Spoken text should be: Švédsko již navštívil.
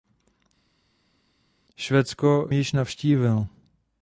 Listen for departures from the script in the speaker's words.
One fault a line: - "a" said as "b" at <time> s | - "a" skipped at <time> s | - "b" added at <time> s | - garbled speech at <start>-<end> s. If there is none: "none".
none